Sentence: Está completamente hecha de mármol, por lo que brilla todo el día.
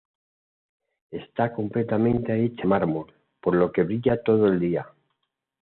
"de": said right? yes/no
no